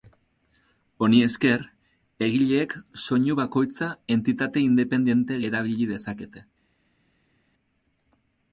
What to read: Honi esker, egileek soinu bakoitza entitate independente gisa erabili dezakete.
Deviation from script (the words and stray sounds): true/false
true